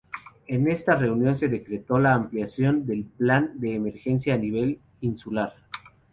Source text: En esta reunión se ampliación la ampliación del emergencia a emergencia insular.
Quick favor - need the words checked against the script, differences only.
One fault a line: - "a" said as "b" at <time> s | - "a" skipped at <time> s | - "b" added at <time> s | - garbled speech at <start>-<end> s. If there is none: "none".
- "ampliación" said as "decretó" at 1.5 s
- "plan de" added at 3.0 s
- "emergencia" said as "nivel" at 4.4 s